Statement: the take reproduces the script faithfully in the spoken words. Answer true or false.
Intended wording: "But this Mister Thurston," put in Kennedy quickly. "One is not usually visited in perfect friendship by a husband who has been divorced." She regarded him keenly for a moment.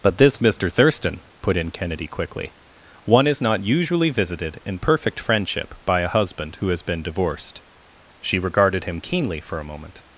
true